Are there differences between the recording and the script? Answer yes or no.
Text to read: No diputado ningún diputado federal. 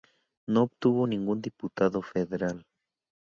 yes